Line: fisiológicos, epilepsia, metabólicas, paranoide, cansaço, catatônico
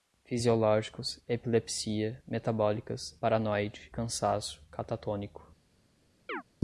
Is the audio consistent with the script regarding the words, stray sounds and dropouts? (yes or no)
no